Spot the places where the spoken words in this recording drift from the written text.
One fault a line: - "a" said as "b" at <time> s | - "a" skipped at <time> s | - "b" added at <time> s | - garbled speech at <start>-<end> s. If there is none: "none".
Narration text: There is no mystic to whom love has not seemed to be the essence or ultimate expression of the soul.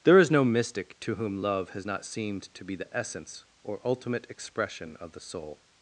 none